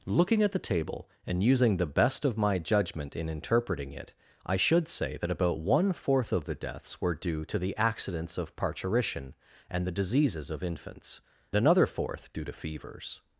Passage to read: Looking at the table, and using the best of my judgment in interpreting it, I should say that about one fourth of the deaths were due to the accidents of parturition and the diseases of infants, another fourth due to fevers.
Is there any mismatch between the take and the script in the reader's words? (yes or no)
no